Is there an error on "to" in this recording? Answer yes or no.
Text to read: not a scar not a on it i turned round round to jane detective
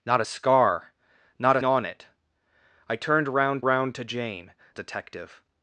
no